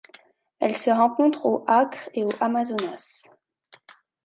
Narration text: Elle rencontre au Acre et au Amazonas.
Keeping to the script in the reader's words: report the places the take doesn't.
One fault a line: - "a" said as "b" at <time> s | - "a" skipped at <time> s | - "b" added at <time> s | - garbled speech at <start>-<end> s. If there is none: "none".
- "se" added at 0.8 s